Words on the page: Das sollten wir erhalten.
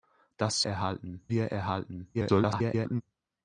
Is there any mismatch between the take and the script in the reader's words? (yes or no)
yes